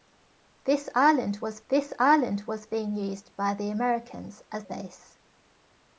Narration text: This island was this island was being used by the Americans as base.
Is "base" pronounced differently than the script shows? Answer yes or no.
no